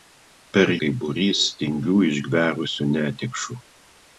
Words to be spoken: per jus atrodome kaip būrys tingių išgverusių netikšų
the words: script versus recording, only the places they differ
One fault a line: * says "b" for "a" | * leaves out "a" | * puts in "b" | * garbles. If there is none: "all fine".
* leaves out "jus atrodome"